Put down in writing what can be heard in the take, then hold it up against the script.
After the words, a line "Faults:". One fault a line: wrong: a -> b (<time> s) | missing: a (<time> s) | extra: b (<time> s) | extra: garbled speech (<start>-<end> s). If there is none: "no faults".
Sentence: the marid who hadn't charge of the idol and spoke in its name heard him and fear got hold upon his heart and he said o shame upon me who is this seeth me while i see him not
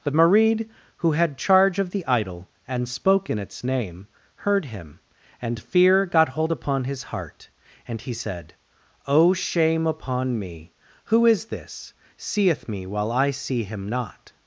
the marid who had charge of the idol and spoke in its name heard him and fear got hold upon his heart and he said o shame upon me who is this seeth me while i see him not
Faults:
wrong: hadn't -> had (1.1 s)